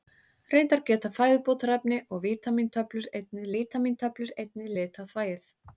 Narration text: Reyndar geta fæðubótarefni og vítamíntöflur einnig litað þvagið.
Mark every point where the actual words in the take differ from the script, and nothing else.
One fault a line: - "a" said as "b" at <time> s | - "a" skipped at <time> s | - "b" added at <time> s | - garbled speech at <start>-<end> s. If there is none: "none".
- "vítamíntöflur einnig" added at 3.5 s